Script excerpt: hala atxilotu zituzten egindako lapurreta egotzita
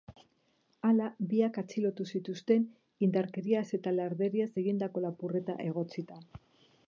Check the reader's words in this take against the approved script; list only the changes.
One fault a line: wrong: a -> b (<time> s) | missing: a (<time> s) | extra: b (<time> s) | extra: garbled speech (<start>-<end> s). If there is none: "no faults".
extra: biak (1.3 s)
extra: indarkeriaz eta larderiaz (3.1 s)